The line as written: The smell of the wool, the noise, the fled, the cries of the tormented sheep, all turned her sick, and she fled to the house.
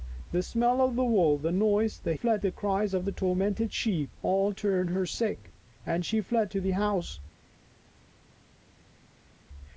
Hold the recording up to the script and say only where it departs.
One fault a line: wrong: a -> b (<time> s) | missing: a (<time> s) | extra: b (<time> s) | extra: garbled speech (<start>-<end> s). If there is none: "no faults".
no faults